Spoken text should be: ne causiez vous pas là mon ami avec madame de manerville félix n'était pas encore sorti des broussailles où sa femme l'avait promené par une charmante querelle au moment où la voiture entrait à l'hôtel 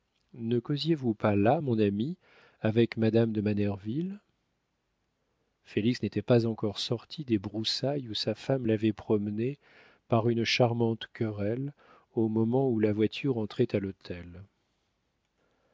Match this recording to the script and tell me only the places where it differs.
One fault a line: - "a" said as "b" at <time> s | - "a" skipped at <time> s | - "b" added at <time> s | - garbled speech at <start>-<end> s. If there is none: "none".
none